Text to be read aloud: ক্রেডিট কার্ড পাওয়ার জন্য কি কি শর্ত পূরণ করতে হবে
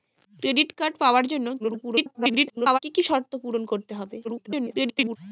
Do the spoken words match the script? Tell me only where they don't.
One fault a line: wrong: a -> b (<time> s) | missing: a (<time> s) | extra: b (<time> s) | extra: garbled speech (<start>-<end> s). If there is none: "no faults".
extra: garbled speech (1.6-2.8 s)
extra: garbled speech (4.2-5.2 s)